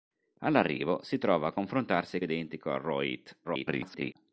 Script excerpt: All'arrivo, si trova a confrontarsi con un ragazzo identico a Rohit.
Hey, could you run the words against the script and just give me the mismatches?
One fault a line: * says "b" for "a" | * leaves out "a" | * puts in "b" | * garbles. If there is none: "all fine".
* leaves out "con un ragazzo"
* garbles